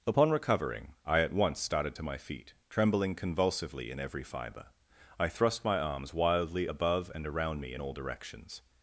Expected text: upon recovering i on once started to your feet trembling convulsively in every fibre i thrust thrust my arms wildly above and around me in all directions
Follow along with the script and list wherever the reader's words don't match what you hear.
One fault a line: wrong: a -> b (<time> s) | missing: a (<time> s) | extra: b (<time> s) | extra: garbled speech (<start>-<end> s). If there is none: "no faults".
wrong: on -> at (1.2 s)
wrong: your -> my (2.0 s)
missing: thrust (5.6 s)